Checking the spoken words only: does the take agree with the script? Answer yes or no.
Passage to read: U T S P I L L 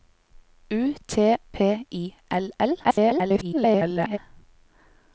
no